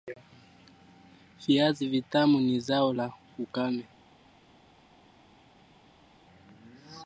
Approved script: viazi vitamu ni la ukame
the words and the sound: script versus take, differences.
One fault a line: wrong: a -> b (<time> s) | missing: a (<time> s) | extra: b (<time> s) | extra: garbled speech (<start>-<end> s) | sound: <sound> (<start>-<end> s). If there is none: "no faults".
extra: zao (2.6 s)